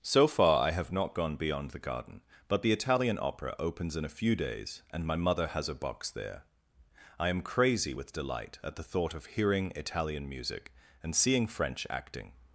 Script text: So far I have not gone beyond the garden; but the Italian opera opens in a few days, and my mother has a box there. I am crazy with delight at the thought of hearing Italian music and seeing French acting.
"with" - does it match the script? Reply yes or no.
yes